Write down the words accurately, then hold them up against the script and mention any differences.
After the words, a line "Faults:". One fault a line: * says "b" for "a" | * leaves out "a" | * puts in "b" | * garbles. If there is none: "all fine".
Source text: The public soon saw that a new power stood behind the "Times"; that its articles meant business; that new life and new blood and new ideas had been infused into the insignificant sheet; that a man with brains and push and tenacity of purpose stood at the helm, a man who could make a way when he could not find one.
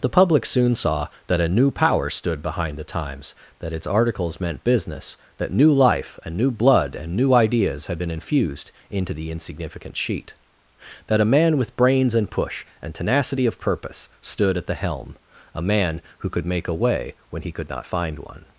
The public soon saw that a new power stood behind the "Times"; that its articles meant business; that new life and new blood and new ideas had been infused into the insignificant sheet; that a man with brains and push and tenacity of purpose stood at the helm, a man who could make a way when he could not find one.
Faults:
all fine